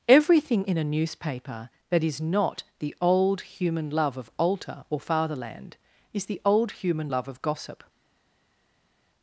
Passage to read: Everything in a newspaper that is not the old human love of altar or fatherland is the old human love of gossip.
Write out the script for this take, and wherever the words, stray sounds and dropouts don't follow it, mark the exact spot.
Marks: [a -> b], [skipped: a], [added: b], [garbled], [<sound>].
Everything in a newspaper that is not the old human love of altar or fatherland is the old human love of gossip.